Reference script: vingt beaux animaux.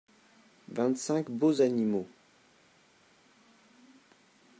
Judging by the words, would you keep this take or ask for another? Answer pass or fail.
fail